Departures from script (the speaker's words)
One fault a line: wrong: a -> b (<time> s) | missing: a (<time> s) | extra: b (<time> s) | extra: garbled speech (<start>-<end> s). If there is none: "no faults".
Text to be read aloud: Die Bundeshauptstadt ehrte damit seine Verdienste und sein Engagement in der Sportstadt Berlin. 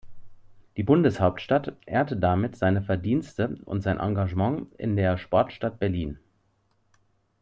no faults